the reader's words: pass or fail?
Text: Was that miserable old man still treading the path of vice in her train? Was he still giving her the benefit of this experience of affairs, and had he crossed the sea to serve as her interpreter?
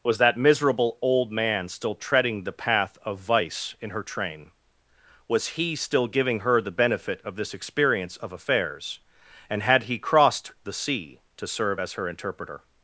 pass